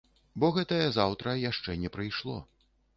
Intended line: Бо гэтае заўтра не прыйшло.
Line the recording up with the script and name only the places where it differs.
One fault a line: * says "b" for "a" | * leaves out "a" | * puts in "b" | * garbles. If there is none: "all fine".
* puts in "яшчэ"